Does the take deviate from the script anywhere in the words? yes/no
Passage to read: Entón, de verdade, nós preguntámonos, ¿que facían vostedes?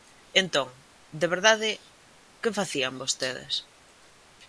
yes